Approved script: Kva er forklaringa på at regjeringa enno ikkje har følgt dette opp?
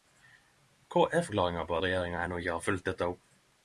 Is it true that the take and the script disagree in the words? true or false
true